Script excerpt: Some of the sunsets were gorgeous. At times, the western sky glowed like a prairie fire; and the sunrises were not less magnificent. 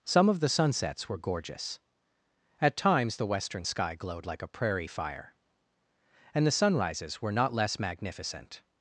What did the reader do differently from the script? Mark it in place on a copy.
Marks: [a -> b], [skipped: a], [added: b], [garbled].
Some of the sunsets were gorgeous. At times, the western sky glowed like a prairie fire; and the sunrises were not less magnificent.